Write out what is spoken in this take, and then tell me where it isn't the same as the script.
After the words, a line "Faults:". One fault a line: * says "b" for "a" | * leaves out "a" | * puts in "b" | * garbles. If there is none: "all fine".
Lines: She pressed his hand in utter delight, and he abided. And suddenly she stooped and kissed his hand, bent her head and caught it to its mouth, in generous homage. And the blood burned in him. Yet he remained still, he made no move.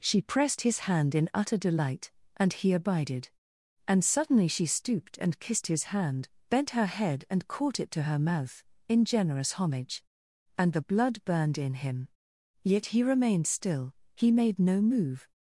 She pressed his hand in utter delight, and he abided. And suddenly she stooped and kissed his hand, bent her head and caught it to her mouth, in generous homage. And the blood burned in him. Yet he remained still, he made no move.
Faults:
* says "her" for "its"